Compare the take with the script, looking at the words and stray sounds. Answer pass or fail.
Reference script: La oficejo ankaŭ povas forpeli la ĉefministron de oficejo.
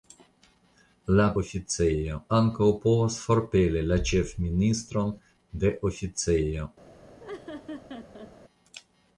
fail